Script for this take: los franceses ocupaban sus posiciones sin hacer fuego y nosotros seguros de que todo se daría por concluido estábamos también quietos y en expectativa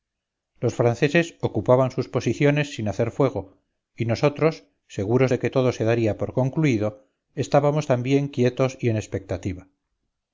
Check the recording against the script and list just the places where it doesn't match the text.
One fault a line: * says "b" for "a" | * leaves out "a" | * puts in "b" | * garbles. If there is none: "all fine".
all fine